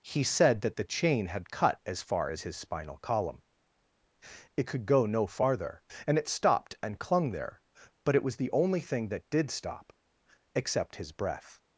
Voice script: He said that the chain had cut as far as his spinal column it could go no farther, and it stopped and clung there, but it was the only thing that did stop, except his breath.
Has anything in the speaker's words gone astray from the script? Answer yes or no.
no